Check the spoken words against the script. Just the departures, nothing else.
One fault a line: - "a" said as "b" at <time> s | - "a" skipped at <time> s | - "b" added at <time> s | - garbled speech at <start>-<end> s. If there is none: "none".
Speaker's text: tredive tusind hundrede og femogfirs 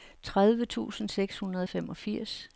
- "seks" added at 1.1 s